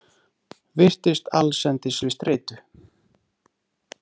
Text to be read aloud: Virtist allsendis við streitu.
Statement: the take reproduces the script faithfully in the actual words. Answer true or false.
true